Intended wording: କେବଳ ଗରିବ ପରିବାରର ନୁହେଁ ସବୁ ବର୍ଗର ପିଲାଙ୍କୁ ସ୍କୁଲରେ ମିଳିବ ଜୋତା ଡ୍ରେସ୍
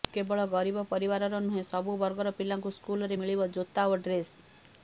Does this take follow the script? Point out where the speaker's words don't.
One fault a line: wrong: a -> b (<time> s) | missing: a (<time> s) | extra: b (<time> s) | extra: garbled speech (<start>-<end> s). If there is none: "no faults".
extra: ଓ (3.9 s)